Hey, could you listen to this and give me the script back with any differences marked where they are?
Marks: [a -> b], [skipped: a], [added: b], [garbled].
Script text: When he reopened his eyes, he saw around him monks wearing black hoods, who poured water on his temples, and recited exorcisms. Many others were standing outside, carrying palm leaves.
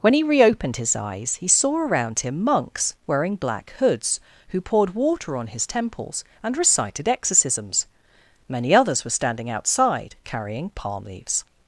When he reopened his eyes, he saw around him monks wearing black hoods, who poured water on his temples, and recited exorcisms. Many others were standing outside, carrying palm leaves.